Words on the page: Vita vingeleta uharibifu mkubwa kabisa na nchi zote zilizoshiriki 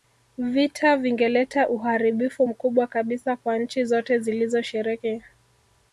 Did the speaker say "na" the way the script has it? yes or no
no